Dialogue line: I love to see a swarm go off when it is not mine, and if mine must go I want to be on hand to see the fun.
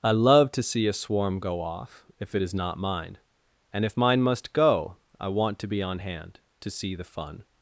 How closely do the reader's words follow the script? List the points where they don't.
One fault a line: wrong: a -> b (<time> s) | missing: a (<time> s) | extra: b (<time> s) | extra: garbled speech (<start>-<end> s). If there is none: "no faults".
wrong: when -> if (2.2 s)